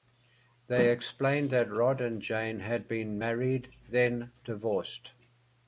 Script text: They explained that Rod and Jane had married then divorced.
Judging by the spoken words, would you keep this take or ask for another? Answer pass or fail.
fail